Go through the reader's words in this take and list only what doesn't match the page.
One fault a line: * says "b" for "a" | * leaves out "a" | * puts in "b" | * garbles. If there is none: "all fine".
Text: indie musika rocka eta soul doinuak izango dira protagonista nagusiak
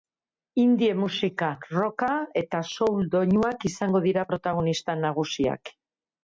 all fine